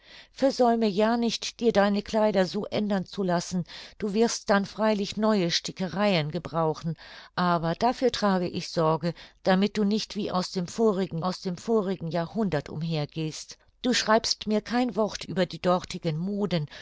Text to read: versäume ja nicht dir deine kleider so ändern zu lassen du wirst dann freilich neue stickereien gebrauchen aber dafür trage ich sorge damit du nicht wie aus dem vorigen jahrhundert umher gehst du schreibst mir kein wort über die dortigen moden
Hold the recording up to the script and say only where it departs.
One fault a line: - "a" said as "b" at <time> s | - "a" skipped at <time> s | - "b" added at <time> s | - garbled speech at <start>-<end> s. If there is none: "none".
- "aus dem vorigen" added at 11.2 s